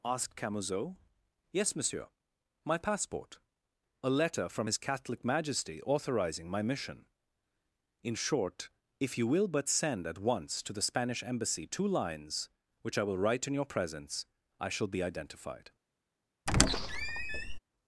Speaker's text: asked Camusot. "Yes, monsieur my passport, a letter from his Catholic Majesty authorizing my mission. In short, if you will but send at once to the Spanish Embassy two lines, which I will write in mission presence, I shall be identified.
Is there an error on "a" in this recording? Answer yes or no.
no